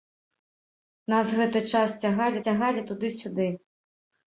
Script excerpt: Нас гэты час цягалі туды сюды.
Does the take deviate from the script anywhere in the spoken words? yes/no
yes